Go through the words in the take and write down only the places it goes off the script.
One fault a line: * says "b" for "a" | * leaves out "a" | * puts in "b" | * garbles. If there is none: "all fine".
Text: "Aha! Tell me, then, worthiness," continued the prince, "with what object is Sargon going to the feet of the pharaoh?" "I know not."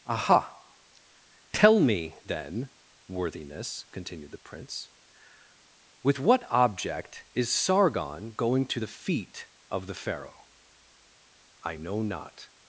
all fine